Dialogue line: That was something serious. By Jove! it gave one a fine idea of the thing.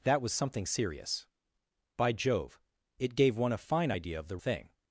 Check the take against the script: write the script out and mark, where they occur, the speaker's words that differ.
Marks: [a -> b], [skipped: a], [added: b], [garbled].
That was something serious. By Jove! it gave one a fine idea of the thing.